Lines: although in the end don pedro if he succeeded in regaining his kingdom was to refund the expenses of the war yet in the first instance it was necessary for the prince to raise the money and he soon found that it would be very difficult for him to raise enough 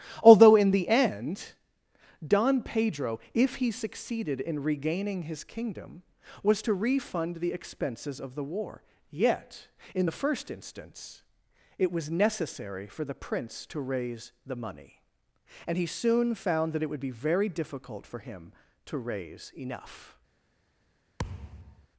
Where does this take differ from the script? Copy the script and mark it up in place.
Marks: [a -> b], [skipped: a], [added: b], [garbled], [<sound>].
although in the end don pedro if he succeeded in regaining his kingdom was to refund the expenses of the war yet in the first instance it was necessary for the prince to raise the money and he soon found that it would be very difficult for him to raise enough [thud]